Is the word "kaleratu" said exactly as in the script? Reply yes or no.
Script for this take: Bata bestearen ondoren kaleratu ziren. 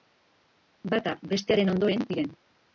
no